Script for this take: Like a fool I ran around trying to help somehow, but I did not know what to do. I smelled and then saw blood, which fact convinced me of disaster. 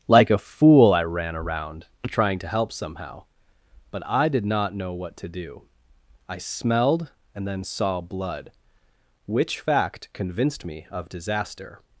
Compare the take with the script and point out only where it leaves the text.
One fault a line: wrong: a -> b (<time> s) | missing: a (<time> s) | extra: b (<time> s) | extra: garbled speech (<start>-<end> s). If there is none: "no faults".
no faults